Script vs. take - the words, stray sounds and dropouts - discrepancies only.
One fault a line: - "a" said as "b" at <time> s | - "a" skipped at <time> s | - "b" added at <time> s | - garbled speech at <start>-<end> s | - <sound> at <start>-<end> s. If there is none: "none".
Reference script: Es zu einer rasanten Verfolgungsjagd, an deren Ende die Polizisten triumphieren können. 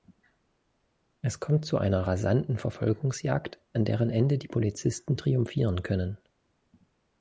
- "kommt" added at 1.4 s